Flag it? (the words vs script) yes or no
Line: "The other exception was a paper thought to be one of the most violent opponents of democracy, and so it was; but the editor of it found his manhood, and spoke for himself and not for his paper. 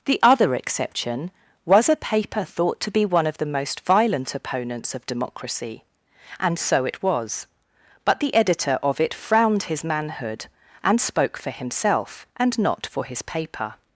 yes